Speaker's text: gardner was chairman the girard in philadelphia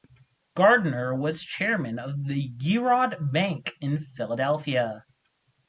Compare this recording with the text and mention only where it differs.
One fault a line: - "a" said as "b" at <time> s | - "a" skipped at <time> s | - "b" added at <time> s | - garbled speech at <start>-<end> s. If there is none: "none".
- "of" added at 2.0 s
- "bank" added at 3.3 s